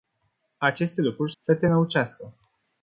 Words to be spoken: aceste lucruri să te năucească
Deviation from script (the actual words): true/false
false